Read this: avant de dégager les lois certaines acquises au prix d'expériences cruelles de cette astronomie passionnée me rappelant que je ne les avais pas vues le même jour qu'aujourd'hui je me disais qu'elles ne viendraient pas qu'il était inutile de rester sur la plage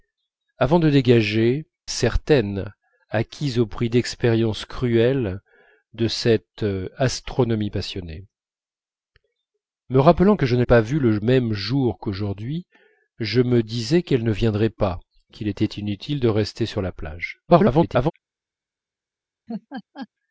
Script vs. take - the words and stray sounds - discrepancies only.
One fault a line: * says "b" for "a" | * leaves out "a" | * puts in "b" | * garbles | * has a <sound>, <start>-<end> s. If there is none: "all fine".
* leaves out "les lois"
* leaves out "les avais"
* garbles
* has a laugh, 19.5-20.1 s